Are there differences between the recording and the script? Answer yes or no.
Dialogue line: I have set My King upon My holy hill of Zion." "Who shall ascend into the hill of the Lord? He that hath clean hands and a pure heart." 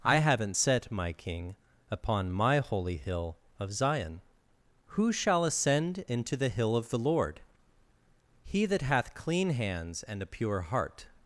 yes